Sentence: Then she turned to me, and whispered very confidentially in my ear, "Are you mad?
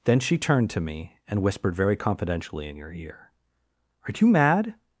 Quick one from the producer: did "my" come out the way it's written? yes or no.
no